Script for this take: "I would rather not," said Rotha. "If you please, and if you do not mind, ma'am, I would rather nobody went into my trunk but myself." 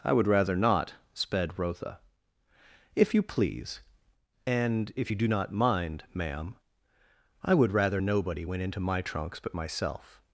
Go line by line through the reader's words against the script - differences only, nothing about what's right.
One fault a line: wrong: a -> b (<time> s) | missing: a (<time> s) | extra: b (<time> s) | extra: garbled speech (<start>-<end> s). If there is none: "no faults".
wrong: said -> sped (1.1 s)
wrong: trunk -> trunks (9.0 s)